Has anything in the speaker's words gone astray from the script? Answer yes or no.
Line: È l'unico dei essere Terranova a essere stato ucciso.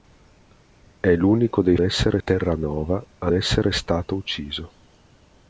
no